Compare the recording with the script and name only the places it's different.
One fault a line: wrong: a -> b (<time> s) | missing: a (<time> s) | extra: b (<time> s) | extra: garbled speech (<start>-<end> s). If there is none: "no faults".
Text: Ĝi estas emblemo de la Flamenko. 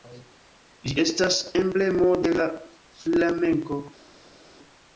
no faults